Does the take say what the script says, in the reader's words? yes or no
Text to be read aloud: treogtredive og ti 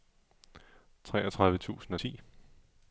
no